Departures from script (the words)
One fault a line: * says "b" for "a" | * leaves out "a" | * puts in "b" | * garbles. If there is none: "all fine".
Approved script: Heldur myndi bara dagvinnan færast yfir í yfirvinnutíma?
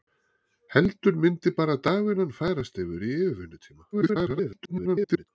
* garbles